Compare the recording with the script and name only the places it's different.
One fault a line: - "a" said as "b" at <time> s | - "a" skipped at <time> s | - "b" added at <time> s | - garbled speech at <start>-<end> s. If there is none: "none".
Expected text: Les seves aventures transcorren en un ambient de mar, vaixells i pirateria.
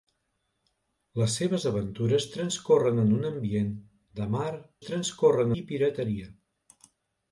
- "vaixells" said as "transcorren" at 4.9 s